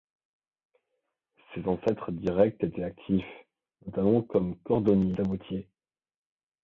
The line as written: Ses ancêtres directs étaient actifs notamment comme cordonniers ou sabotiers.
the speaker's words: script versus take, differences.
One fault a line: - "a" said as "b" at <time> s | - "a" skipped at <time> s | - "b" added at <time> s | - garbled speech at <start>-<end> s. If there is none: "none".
- "ou" skipped at 5.1 s